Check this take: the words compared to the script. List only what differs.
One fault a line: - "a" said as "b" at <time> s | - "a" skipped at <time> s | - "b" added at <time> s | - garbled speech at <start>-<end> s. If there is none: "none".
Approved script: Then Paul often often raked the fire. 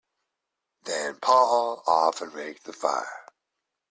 - "often" skipped at 2.3 s